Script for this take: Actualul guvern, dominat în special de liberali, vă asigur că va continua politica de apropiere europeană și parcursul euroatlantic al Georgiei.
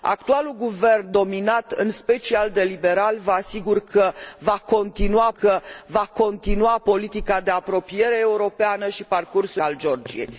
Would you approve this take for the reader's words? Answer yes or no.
no